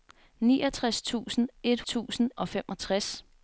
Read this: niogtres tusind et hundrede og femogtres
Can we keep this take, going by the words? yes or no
no